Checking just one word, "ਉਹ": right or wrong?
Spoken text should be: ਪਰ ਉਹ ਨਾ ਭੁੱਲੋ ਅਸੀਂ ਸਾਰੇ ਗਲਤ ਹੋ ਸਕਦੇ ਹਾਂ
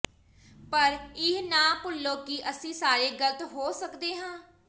wrong